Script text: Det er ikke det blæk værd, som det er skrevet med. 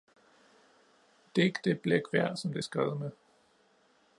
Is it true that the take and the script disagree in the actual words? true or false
false